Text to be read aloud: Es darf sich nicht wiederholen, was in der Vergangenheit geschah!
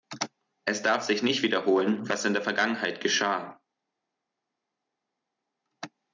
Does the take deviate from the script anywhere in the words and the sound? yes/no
no